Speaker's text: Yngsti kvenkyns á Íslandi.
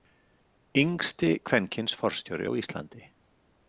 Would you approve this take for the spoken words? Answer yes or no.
no